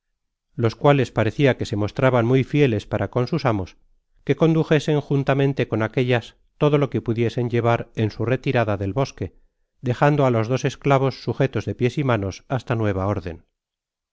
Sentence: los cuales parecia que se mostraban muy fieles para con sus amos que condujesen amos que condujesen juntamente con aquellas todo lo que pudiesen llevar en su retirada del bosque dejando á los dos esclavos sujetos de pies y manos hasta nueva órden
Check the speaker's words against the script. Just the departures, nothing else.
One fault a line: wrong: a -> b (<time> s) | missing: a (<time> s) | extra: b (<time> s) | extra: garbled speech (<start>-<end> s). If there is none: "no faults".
missing: amos que condujesen (5.0 s)